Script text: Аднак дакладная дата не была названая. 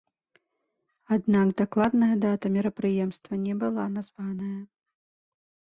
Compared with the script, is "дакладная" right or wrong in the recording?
right